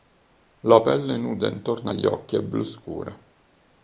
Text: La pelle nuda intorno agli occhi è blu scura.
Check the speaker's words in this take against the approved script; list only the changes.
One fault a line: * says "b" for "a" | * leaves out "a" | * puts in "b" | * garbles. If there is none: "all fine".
all fine